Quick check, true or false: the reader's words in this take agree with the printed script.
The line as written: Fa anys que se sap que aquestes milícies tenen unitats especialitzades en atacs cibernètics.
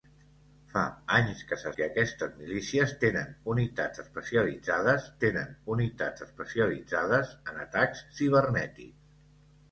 false